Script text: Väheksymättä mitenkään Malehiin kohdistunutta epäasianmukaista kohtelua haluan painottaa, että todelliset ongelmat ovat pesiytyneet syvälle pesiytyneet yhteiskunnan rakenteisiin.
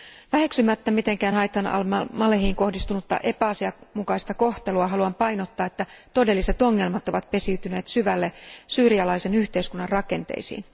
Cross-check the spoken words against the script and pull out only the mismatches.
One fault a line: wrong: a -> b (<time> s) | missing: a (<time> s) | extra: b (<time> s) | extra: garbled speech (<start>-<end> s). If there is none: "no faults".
extra: Haytham Al (1.3 s)
wrong: pesiytyneet -> syyrialaisen (8.7 s)